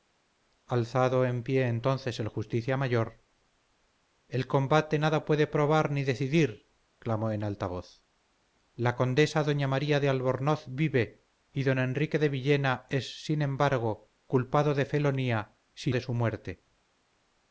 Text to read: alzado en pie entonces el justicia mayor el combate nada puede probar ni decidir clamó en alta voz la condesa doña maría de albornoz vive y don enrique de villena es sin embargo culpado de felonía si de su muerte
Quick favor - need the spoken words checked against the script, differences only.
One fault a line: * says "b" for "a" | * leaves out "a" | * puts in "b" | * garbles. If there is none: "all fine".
all fine